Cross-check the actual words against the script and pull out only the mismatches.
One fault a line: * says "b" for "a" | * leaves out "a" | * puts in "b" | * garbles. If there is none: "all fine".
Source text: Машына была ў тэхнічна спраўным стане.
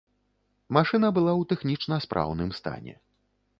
all fine